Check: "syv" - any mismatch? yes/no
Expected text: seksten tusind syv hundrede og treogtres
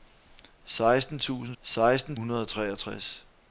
yes